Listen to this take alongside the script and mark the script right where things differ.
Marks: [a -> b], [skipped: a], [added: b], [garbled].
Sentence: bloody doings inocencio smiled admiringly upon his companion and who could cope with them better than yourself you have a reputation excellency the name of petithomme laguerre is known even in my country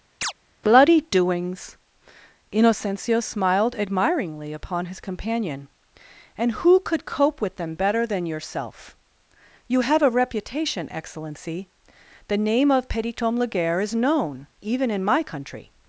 bloody doings inocencio smiled admiringly upon his companion and who could cope with them better than yourself you have a reputation excellency the name of petithomme laguerre is known even in my country